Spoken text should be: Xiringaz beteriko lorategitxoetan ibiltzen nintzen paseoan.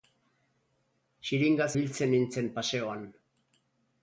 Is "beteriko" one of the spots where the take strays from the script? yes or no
yes